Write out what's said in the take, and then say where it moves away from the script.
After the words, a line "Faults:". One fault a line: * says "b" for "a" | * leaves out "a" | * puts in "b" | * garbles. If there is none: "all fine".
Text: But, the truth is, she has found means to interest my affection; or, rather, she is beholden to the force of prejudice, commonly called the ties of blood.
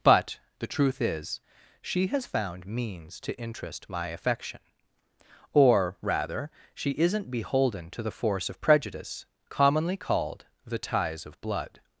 But, the truth is, she has found means to interest my affection; or, rather, she isn't beholden to the force of prejudice, commonly called the ties of blood.
Faults:
* says "isn't" for "is"